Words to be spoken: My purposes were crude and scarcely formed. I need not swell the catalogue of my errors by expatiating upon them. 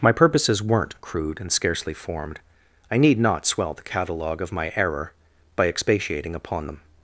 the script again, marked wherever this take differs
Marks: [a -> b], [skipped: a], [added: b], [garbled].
My purposes [were -> weren't] crude and scarcely formed. I need not swell the catalogue of my [errors -> error] by expatiating upon them.